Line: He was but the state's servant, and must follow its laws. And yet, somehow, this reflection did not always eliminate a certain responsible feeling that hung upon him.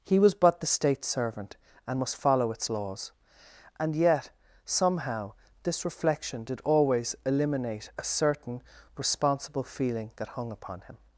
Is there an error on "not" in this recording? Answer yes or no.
yes